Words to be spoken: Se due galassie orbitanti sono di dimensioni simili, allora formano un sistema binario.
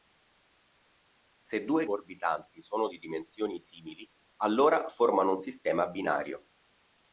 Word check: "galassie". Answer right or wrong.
wrong